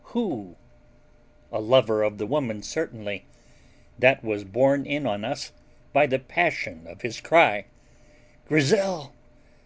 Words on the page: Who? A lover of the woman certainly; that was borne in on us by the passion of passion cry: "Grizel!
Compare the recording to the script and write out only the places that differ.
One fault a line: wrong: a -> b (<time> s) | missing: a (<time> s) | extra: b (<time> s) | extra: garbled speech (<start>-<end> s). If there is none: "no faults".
wrong: passion -> his (7.0 s)